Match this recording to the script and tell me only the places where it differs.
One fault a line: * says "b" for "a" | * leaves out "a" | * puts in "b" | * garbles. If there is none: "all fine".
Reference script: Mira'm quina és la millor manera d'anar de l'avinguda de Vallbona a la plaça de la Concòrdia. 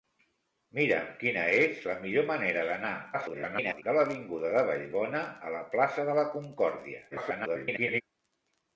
* garbles
* garbles